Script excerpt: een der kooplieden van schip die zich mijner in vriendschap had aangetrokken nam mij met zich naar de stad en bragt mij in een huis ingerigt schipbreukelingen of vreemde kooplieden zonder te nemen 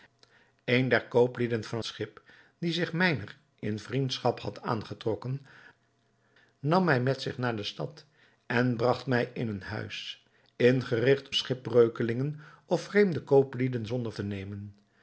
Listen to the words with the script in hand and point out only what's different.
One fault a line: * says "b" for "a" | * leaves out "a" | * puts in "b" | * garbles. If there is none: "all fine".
all fine